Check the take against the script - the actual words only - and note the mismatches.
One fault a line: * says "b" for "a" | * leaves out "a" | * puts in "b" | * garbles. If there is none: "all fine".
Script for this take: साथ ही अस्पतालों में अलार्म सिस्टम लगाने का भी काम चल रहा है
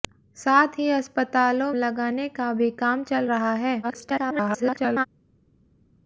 * leaves out "में अलार्म सिस्टम"
* garbles